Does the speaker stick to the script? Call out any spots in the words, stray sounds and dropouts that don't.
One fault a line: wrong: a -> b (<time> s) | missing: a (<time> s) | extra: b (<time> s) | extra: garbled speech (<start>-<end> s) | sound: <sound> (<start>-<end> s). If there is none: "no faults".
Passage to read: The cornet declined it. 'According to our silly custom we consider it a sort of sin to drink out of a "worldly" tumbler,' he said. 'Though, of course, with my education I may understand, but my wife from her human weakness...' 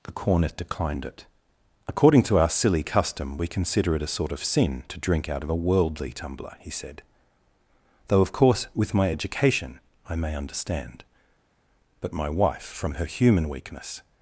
no faults